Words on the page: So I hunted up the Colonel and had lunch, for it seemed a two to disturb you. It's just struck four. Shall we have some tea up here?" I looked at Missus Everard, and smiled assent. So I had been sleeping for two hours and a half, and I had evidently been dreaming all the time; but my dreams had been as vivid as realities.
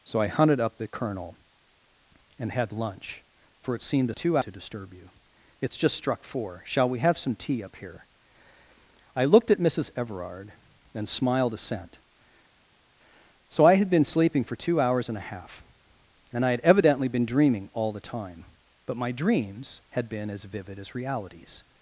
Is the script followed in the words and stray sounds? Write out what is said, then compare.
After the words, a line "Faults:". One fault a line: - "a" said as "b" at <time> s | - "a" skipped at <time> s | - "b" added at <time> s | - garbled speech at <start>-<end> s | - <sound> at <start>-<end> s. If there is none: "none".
So I hunted up the Colonel and had lunch, for it seemed a two to disturb you. It's just struck four. Shall we have some tea up here?" I looked at Missus Everard, and smiled assent. So I had been sleeping for two hours and a half, and I had evidently been dreaming all the time; but my dreams had been as vivid as realities.
Faults:
none